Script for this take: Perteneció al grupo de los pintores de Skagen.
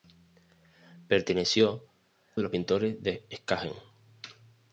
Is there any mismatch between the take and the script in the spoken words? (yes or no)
yes